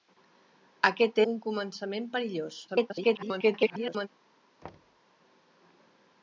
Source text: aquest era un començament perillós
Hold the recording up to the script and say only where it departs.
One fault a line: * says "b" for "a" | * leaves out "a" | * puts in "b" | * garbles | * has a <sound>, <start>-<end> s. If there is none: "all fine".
* leaves out "era"
* garbles
* has a thud, 4.6-5.0 s